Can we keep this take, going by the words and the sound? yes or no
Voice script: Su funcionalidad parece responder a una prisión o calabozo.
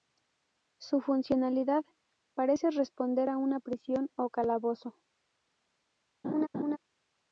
no